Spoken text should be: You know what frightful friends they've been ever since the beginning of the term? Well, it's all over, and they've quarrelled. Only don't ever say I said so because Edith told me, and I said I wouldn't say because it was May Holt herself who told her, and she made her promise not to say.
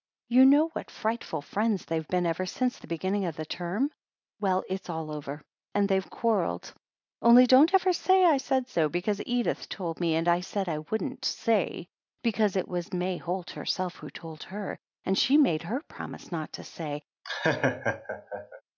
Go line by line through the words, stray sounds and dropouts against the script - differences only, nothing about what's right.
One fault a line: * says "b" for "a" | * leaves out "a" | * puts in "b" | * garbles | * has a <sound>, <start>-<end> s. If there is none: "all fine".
* has a laugh, 17.2-18.6 s